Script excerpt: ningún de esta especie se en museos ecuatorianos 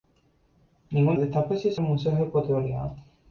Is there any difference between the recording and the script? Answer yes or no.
no